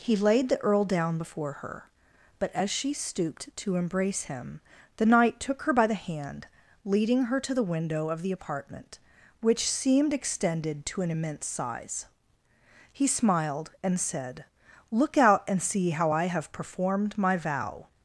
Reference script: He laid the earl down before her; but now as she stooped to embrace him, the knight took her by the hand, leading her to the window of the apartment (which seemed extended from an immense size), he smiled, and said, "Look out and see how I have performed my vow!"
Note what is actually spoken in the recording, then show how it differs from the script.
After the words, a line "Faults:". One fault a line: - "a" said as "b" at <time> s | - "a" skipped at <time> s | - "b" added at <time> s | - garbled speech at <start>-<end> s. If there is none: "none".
He laid the earl down before her; but as she stooped to embrace him, the knight took her by the hand, leading her to the window of the apartment (which seemed extended to an immense size), he smiled, and said, "Look out and see how I have performed my vow!"
Faults:
- "now" skipped at 2.5 s
- "from" said as "to" at 10.9 s